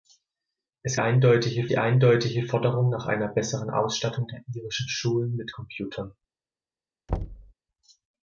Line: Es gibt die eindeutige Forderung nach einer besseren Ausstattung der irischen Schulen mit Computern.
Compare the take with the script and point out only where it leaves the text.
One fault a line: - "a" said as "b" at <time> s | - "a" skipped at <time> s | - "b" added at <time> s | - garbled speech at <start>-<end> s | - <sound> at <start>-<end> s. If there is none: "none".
- "gibt" said as "eindeutige" at 1.0 s
- thud at 7.1-7.5 s